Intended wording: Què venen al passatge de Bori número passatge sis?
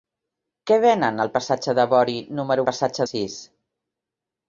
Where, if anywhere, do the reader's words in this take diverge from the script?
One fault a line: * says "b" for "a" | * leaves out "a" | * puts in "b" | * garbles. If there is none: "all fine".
all fine